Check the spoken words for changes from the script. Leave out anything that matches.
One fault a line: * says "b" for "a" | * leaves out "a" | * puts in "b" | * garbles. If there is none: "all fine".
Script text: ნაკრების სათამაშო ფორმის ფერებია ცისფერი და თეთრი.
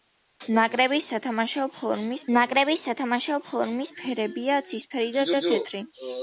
* puts in "ნაკრების სათამაშო ფორმის"
* puts in "და"